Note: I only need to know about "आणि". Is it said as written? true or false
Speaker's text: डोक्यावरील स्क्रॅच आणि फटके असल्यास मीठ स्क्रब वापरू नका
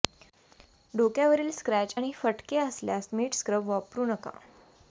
true